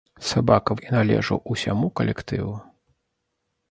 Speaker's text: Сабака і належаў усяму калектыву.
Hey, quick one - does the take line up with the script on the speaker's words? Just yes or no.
yes